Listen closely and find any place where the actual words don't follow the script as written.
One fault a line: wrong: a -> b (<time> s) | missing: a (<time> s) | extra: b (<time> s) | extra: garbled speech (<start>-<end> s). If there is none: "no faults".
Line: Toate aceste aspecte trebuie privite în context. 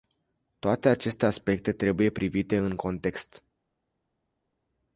no faults